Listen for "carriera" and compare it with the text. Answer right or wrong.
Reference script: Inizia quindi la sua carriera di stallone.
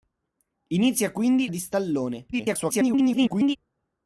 wrong